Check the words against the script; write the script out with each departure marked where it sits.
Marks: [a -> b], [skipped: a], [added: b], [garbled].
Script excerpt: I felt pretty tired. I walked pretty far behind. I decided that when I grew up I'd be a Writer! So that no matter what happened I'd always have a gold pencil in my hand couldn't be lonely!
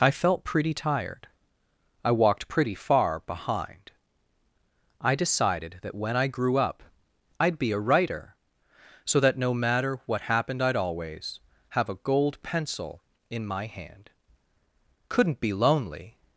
I felt pretty tired. I walked pretty far behind. I decided that when I grew up I'd be a Writer! So that no matter what happened I'd always have a gold pencil in my hand couldn't be lonely!